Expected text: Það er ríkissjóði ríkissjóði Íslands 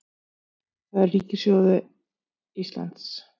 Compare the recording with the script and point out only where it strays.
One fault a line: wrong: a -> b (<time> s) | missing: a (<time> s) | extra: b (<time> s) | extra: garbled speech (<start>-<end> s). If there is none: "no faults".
missing: ríkissjóði (1.8 s)